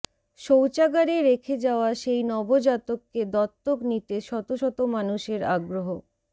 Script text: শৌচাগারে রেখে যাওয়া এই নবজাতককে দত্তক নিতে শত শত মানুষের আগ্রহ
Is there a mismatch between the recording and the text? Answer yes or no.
yes